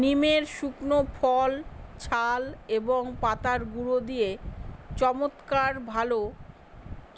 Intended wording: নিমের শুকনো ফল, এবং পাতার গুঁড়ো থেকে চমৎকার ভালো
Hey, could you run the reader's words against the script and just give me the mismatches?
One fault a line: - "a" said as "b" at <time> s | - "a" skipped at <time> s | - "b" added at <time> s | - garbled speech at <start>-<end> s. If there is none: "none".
- "ছাল" added at 2.0 s
- "থেকে" said as "দিয়ে" at 4.1 s